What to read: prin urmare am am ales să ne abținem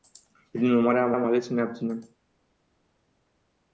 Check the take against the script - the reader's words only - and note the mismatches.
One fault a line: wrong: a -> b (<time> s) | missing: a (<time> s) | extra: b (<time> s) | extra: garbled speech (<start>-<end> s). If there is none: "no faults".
no faults